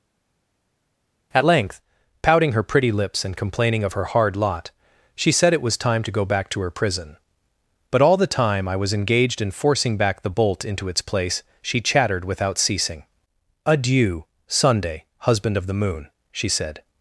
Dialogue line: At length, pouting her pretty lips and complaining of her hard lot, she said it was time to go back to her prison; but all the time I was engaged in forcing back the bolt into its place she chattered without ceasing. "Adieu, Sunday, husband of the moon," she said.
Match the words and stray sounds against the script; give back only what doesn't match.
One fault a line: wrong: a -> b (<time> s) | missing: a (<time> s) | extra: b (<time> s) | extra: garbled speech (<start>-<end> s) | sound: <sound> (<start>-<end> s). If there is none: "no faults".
no faults